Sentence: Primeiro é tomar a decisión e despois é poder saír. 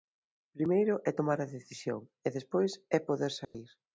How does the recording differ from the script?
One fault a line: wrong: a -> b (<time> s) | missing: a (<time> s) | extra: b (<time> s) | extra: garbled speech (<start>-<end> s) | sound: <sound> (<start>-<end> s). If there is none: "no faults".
sound: dropout (3.4-3.5 s)